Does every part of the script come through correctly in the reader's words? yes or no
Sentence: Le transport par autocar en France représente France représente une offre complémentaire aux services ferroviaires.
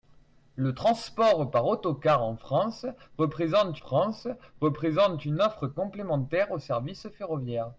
yes